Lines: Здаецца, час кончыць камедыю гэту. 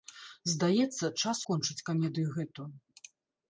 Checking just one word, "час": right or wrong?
right